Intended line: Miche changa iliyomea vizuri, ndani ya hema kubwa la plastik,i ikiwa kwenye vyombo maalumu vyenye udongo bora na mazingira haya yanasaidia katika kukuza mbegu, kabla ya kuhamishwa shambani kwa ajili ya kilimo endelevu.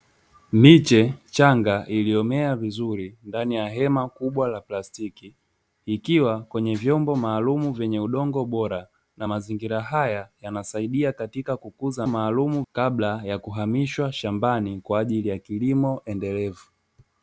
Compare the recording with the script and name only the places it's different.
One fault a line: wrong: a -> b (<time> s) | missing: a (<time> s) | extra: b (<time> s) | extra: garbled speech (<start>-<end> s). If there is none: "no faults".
wrong: mbegu -> maalumu (12.1 s)